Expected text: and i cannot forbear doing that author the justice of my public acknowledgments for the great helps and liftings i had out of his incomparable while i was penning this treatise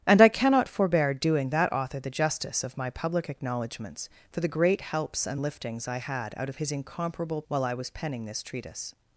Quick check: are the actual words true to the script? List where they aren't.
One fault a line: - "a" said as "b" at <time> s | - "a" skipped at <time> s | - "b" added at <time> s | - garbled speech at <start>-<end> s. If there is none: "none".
none